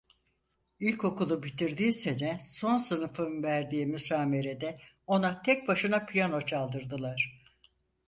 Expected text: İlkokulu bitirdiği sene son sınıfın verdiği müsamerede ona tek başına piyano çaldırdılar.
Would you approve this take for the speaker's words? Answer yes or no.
yes